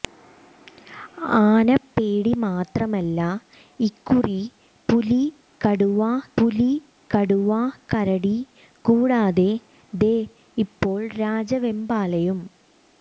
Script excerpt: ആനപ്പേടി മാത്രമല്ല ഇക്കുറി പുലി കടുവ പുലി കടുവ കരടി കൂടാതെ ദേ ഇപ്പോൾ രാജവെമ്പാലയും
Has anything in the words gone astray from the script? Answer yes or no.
no